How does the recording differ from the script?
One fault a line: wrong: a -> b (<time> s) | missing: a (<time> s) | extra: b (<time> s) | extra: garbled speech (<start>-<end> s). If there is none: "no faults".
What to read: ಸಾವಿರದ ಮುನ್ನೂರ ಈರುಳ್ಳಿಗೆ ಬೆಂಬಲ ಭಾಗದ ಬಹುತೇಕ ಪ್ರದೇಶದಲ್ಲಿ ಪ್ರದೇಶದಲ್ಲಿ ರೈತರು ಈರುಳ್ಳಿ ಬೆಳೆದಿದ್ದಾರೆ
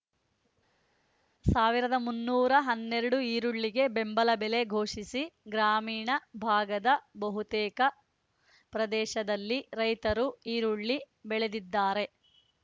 extra: ಹನ್ನೆರಡು (2.6 s)
extra: ಬೆಲೆ ಘೋಷಿಸಿ ಗ್ರಾಮೀಣ (4.4 s)
missing: ಪ್ರದೇಶದಲ್ಲಿ (9.6 s)